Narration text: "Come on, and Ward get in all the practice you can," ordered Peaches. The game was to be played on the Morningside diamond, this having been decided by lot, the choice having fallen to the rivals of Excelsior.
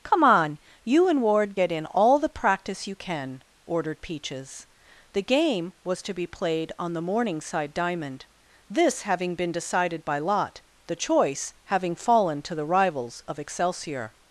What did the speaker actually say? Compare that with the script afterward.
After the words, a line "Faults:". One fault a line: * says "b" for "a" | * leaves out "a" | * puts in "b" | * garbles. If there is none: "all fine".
"Come on, you and Ward get in all the practice you can," ordered Peaches. The game was to be played on the Morningside diamond, this having been decided by lot, the choice having fallen to the rivals of Excelsior.
Faults:
* puts in "you"